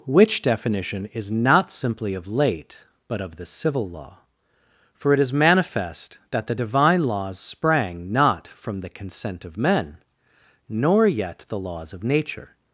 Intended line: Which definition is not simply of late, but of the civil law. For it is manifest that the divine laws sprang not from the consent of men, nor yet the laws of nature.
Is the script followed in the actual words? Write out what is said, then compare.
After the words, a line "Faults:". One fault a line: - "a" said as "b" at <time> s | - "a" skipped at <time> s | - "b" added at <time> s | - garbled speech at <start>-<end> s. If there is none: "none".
Which definition is not simply of late, but of the civil law. For it is manifest that the divine laws sprang not from the consent of men, nor yet the laws of nature.
Faults:
none